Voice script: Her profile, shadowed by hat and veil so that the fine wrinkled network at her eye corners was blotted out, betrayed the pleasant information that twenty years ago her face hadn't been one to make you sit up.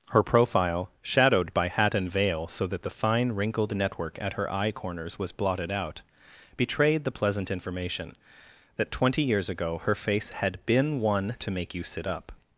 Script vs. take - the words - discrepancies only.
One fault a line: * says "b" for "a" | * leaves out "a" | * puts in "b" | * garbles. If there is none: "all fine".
* says "had" for "hadn't"